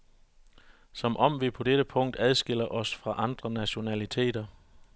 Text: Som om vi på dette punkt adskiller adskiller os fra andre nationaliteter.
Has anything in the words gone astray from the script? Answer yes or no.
yes